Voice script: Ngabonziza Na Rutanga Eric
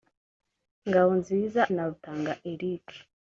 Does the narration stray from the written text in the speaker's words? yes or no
no